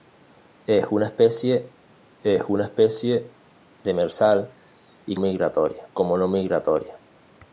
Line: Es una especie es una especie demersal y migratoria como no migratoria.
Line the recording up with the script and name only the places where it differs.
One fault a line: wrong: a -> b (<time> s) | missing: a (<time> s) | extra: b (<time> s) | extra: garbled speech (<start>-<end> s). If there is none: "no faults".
no faults